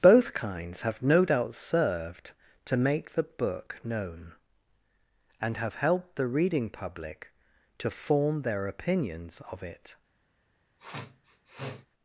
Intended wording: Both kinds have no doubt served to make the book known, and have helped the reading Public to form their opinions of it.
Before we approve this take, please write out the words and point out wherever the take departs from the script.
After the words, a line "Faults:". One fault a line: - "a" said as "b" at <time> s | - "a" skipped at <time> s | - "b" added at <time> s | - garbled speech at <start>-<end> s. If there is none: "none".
Both kinds have no doubt served to make the book known, and have helped the reading Public to form their opinions of it.
Faults:
none